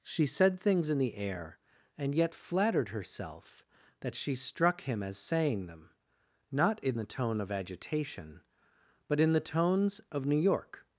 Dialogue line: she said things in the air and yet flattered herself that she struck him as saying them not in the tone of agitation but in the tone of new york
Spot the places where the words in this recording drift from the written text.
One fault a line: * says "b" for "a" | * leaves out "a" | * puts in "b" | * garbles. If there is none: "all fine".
* says "tones" for "tone"